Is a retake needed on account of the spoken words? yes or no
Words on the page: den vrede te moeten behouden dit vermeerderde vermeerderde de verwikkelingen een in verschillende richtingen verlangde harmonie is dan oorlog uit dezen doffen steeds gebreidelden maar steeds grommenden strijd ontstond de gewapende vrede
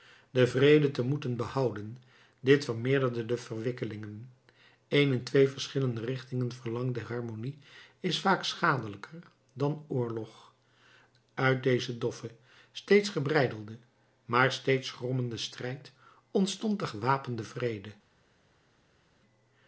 yes